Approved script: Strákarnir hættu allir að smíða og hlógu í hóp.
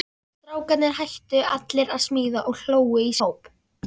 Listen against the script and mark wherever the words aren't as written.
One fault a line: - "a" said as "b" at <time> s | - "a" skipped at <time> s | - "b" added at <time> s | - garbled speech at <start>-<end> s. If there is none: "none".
none